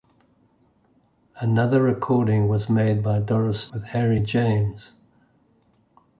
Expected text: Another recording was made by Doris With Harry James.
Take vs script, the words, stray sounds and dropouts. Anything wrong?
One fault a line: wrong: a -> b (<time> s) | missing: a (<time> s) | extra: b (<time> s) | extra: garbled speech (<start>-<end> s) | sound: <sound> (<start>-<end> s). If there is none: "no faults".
no faults